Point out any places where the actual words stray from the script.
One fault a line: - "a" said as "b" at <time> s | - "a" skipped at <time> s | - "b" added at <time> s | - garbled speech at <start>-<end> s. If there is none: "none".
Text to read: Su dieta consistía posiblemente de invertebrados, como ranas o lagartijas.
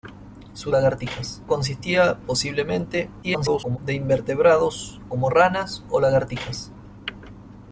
- "dieta" said as "lagartijas" at 0.7 s
- garbled speech at 3.2-3.8 s